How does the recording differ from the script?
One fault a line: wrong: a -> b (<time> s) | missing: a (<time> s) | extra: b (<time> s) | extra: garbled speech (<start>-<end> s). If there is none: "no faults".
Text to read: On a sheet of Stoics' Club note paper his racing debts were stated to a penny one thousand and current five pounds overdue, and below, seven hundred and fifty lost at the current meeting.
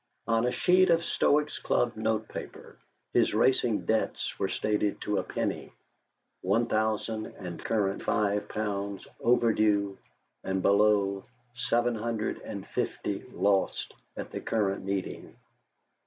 no faults